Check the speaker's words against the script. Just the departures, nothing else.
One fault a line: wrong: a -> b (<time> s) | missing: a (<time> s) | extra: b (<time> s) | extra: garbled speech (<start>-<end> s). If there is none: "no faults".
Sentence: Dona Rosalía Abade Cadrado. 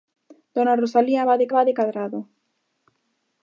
extra: Abade (1.5 s)